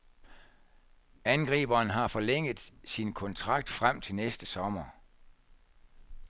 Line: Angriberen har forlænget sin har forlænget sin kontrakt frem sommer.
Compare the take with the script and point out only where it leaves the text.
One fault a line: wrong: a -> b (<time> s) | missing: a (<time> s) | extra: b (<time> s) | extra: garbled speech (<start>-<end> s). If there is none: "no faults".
wrong: har forlænget sin kontrakt frem -> kontrakt frem til næste (3.1 s)